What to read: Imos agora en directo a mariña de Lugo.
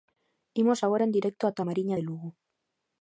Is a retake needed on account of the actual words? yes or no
yes